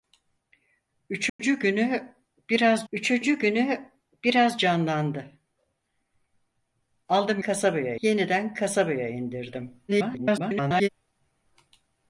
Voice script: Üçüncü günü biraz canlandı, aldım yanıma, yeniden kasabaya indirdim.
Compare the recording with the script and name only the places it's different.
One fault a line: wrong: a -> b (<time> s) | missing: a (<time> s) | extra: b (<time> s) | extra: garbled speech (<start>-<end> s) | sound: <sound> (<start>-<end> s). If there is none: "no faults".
sound: dropout (1.3-1.4 s)
extra: üçüncü günü biraz (2.9 s)
wrong: yanıma -> kasabaya (7.4 s)
extra: garbled speech (9.9-10.9 s)